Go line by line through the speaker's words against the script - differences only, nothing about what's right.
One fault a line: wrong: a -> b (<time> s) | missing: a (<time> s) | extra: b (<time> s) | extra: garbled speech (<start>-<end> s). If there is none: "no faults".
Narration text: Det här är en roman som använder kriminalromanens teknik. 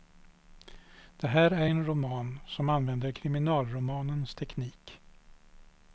no faults